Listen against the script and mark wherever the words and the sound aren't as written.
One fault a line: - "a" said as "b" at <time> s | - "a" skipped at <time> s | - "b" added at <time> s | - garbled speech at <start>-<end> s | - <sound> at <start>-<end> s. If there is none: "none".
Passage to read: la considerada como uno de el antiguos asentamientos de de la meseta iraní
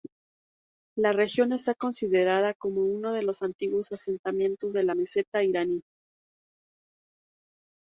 - "región está" added at 1.1 s
- "el" said as "los" at 3.2 s
- "de" skipped at 4.8 s